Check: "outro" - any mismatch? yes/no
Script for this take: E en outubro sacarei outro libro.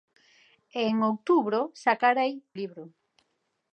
yes